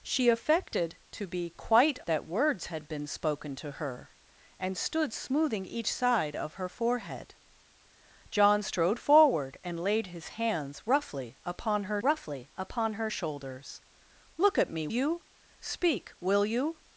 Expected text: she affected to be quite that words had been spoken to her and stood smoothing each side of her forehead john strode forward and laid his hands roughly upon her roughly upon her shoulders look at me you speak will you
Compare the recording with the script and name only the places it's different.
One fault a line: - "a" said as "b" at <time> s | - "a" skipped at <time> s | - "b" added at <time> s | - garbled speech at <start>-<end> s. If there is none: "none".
none